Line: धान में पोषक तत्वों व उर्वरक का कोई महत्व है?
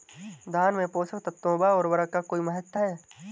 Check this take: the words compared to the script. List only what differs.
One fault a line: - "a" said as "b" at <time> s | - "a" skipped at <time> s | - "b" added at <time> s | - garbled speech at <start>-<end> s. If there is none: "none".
none